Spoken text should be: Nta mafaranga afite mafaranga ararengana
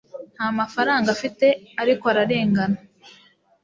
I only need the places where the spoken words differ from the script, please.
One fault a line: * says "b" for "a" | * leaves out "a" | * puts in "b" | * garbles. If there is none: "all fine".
* says "ariko" for "mafaranga"